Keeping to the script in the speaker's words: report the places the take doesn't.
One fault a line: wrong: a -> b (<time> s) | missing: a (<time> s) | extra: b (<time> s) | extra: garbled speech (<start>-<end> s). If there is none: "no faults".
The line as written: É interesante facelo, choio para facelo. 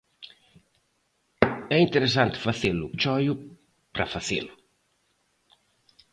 no faults